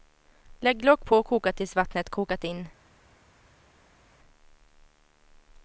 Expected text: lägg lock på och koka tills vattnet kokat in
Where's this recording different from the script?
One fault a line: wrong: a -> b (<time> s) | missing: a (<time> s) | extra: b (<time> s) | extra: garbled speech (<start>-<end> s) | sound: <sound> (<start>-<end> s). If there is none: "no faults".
no faults